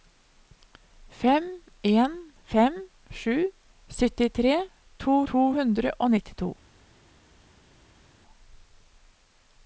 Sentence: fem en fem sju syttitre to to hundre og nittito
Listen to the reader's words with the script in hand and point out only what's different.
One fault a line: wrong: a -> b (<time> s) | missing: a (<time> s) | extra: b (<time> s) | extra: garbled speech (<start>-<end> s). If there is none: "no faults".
no faults